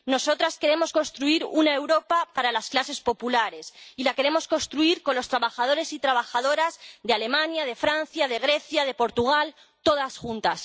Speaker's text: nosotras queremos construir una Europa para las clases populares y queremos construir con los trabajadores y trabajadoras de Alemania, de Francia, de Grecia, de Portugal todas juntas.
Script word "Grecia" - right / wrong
right